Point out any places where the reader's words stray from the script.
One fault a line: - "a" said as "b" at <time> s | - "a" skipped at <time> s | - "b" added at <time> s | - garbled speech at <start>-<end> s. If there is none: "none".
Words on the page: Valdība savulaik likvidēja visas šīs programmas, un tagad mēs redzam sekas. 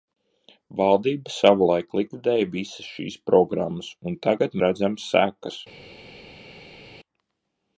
- "mēs" skipped at 4.6 s